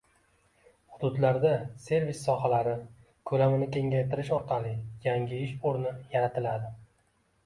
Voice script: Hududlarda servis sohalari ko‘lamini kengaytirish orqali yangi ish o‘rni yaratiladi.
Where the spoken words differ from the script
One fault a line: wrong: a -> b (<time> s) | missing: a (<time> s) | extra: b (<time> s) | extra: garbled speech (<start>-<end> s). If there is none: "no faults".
no faults